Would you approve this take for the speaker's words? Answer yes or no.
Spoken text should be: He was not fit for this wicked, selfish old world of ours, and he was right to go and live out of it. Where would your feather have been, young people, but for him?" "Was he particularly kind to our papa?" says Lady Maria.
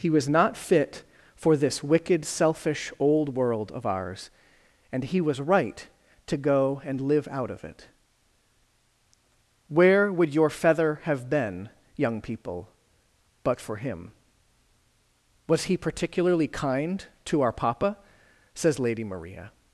yes